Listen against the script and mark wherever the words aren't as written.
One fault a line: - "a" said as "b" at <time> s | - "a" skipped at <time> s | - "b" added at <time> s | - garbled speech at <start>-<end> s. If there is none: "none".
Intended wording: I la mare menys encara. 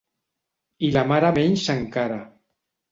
none